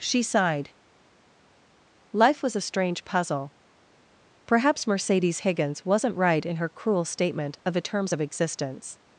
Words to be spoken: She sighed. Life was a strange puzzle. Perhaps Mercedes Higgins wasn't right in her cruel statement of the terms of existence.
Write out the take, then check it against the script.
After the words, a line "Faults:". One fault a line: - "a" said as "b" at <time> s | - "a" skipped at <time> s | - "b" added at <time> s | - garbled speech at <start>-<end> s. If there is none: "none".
She sighed. Life was a strange puzzle. Perhaps Mercedes Higgins wasn't right in her cruel statement of the terms of existence.
Faults:
none